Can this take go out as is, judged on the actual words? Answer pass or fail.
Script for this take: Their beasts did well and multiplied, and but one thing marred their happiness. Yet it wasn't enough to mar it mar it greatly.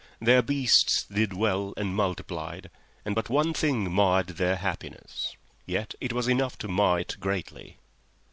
fail